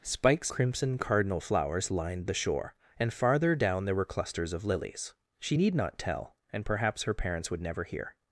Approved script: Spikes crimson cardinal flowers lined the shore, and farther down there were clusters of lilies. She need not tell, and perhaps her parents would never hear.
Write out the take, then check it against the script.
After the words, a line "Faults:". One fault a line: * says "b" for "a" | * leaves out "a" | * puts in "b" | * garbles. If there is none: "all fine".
Spikes crimson cardinal flowers lined the shore, and farther down there were clusters of lilies. She need not tell, and perhaps her parents would never hear.
Faults:
all fine